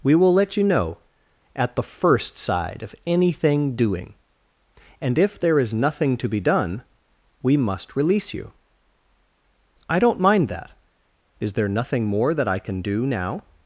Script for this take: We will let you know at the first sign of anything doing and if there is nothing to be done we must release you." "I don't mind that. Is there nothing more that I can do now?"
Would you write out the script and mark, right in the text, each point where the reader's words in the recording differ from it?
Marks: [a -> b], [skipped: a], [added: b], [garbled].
We will let you know at the first [sign -> side] of anything doing and if there is nothing to be done we must release you." "I don't mind that. Is there nothing more that I can do now?"